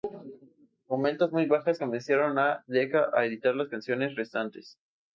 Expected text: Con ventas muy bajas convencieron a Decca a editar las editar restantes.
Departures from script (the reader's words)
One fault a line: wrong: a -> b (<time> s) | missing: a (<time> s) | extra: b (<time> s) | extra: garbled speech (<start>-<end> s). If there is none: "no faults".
wrong: editar -> canciones (3.7 s)